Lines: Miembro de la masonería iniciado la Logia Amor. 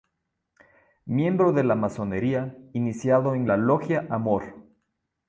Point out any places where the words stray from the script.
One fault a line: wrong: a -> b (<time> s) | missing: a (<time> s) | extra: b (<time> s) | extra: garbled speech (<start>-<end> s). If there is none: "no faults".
extra: en (3.4 s)